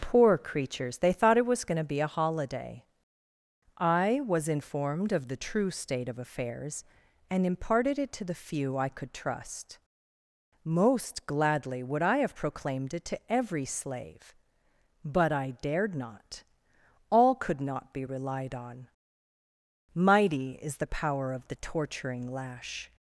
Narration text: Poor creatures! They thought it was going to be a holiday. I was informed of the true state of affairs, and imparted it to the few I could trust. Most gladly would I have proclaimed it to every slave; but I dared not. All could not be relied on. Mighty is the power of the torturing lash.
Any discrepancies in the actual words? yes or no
no